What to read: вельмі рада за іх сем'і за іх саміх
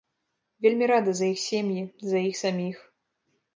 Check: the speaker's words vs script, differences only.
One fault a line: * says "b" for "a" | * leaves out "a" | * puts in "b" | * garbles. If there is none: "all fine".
all fine